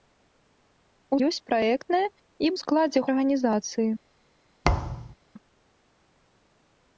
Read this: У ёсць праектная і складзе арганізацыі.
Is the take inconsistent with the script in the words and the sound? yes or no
yes